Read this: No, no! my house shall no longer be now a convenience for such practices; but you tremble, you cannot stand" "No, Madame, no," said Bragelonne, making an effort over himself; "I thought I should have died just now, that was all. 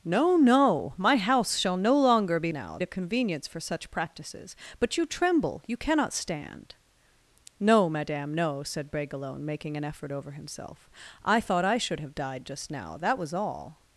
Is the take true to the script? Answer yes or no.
yes